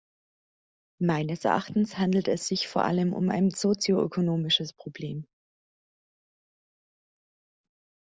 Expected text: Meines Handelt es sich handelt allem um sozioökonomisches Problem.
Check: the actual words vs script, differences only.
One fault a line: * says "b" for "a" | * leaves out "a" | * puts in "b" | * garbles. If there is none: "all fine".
* puts in "Erachtens"
* says "vor" for "handelt"
* puts in "ein"